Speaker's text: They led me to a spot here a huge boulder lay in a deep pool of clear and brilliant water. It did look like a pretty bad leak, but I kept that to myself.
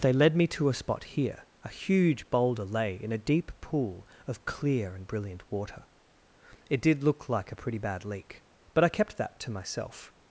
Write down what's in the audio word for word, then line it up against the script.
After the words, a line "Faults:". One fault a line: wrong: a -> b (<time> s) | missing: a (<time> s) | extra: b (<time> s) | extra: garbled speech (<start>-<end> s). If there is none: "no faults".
They led me to a spot here a huge boulder lay in a deep pool of clear and brilliant water. It did look like a pretty bad leak, but I kept that to myself.
Faults:
no faults